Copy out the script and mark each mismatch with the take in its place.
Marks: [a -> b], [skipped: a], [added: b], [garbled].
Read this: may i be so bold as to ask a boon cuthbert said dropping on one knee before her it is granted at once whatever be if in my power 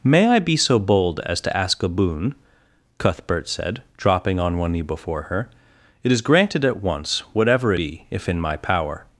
may i be so bold as to ask a boon cuthbert said dropping on one knee before her it is granted at once whatever be if in my power